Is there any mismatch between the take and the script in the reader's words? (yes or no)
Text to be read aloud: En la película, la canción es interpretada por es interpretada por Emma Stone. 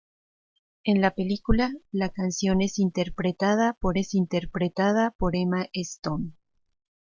no